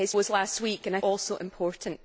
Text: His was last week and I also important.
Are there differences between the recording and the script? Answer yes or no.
no